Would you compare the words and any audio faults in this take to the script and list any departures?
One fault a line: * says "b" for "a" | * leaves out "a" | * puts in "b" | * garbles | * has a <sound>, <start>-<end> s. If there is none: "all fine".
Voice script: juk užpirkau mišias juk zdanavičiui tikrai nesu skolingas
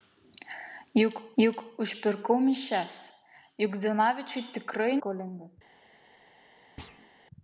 * puts in "juk"
* leaves out "nesu"
* has a thud, 6.8-7.1 s